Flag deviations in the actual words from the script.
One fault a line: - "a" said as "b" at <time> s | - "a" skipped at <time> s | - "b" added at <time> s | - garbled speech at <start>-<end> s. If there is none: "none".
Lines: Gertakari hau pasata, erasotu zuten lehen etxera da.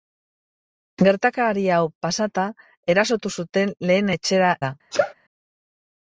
none